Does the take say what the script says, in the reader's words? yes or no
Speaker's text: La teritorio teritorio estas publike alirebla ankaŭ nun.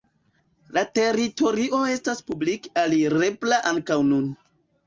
no